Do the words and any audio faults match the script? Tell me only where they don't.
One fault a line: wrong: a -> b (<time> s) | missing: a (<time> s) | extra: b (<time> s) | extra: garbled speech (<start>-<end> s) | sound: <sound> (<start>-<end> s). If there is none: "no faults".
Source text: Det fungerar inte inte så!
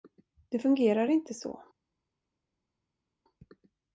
missing: inte (1.3 s)